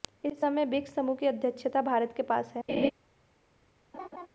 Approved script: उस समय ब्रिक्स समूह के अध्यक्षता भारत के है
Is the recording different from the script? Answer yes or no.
yes